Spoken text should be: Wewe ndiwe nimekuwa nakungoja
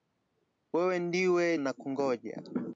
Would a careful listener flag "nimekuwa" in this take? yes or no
yes